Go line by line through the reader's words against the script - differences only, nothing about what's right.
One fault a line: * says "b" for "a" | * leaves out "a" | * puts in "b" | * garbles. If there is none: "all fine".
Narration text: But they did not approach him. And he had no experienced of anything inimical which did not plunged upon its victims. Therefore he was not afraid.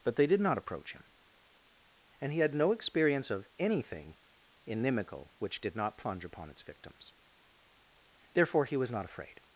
* says "experience" for "experienced"
* says "plunge" for "plunged"